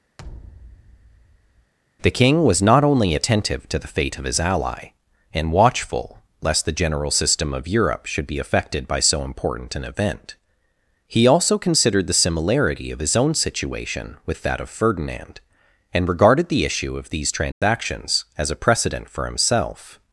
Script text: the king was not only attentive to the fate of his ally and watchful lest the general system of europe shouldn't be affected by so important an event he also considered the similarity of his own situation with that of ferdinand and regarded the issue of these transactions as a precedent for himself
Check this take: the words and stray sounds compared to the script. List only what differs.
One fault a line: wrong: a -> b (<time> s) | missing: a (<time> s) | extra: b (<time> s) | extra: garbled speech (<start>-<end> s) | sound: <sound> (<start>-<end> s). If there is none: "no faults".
sound: thud (0.2-1.7 s)
wrong: shouldn't -> should (8.1 s)
sound: dropout (17.5-17.6 s)